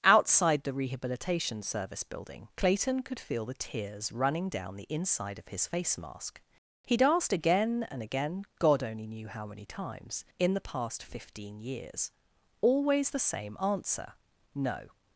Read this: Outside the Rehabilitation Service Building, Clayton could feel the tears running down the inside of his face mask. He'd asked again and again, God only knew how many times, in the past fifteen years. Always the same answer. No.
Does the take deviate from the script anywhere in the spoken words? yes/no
no